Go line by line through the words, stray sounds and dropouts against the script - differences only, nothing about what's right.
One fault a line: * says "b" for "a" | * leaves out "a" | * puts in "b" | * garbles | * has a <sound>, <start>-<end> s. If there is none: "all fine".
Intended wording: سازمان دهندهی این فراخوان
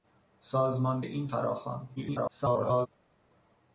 * leaves out "دهندهی"
* garbles